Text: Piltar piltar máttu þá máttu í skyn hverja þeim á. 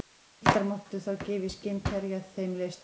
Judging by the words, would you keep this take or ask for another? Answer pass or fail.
fail